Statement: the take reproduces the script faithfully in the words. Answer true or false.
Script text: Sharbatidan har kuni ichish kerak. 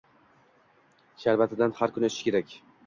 true